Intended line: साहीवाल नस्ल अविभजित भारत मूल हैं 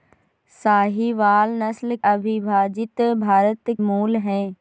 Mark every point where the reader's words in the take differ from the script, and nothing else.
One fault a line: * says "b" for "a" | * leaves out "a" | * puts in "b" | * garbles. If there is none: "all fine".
all fine